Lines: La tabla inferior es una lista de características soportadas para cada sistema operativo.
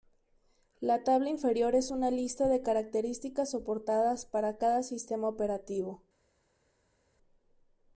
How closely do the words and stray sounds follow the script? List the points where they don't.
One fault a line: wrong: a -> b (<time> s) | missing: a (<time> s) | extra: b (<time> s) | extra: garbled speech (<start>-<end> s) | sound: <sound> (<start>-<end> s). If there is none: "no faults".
no faults